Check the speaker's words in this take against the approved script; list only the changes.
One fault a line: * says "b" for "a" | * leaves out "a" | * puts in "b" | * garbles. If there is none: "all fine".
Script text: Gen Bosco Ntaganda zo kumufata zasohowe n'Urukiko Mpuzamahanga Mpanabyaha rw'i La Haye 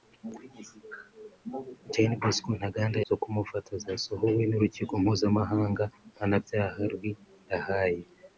all fine